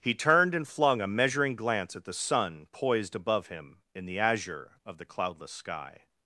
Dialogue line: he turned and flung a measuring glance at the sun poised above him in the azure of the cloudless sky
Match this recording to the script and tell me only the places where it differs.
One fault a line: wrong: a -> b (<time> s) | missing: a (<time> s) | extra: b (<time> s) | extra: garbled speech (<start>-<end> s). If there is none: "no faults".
no faults